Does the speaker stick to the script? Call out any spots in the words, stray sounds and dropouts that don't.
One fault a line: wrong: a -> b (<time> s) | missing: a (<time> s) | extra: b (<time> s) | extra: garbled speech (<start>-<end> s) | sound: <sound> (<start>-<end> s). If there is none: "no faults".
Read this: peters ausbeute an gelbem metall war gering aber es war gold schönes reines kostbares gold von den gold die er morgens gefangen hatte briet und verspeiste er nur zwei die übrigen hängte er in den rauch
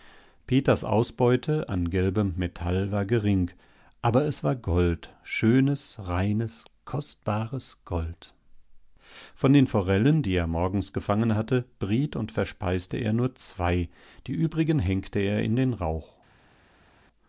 wrong: gold -> forellen (9.7 s)